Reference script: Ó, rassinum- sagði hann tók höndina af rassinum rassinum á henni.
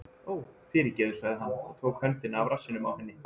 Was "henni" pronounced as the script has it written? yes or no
yes